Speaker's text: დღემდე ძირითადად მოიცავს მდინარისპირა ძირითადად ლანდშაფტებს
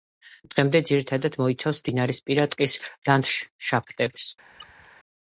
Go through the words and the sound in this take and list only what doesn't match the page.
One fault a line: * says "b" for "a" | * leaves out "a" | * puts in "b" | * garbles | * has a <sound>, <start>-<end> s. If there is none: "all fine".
* says "ტყის" for "ძირითადად"
* has a squeak, 4.5-5.0 s